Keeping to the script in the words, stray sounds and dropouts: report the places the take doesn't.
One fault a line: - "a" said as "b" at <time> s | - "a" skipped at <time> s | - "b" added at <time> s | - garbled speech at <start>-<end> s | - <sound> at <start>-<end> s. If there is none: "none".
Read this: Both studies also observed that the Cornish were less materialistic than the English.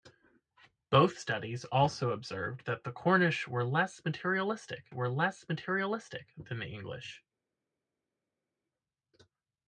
- "were less materialistic" added at 4.9 s